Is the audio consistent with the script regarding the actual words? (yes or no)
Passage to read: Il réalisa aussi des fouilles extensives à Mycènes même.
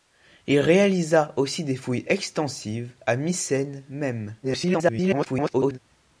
no